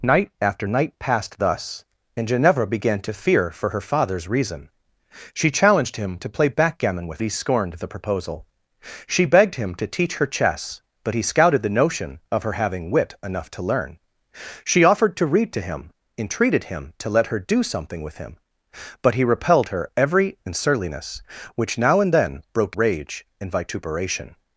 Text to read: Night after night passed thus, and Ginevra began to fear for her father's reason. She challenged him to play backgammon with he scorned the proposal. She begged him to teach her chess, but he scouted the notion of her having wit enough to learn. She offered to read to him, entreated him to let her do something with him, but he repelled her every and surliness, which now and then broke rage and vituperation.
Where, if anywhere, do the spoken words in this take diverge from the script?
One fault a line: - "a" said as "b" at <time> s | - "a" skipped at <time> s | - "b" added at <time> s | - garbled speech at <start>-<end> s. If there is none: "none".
none